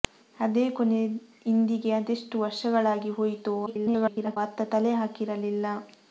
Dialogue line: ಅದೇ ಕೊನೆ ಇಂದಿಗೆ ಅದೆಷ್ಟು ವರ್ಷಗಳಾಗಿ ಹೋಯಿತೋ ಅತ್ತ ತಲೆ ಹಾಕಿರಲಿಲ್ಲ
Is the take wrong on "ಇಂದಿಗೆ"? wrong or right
right